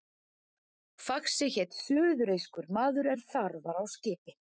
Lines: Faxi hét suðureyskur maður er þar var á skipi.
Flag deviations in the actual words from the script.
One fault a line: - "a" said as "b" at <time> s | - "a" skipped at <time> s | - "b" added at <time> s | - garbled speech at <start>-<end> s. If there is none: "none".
none